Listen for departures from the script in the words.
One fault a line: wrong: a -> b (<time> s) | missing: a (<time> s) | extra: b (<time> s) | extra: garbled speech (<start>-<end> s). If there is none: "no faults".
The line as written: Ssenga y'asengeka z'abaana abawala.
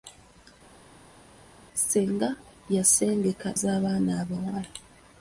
no faults